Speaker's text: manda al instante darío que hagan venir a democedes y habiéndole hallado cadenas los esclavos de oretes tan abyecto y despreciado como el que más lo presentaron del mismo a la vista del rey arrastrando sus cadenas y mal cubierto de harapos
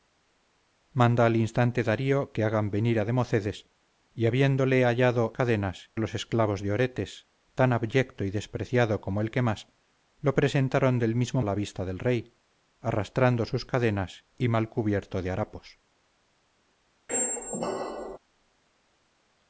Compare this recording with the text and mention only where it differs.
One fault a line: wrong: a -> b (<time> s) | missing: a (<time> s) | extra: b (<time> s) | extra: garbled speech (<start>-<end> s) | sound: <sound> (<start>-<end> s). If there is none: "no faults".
sound: squeak (17.1-18.2 s)